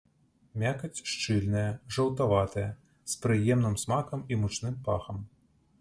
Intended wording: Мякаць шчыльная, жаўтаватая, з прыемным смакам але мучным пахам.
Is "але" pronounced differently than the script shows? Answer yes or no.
yes